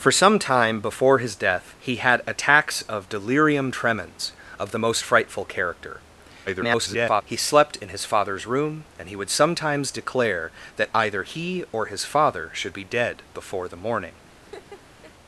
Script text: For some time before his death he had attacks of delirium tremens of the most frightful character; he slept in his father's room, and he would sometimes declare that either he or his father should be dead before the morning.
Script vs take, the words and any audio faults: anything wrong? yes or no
yes